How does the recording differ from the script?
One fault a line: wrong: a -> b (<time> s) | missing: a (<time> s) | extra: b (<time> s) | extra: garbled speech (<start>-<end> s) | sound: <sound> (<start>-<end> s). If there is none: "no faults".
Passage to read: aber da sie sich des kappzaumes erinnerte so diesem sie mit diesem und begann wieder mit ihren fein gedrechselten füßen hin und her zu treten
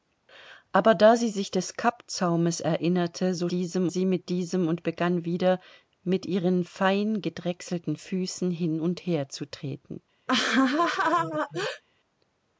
sound: laugh (10.3-11.8 s)